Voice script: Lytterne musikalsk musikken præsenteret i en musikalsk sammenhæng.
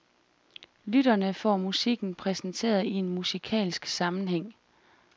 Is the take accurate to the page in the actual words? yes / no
no